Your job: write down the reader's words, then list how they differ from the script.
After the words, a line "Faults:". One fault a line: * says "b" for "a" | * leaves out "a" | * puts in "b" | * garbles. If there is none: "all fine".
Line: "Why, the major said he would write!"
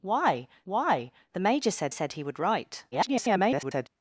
"Why why, the major said said he would write!" [garbled]
Faults:
* puts in "why"
* puts in "said"
* garbles